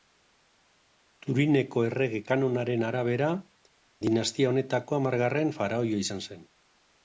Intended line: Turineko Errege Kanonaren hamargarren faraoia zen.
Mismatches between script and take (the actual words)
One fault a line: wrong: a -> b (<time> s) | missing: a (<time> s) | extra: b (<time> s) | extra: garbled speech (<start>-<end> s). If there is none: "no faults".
extra: arabera dinastia honetako (2.9 s)
extra: izan (6.1 s)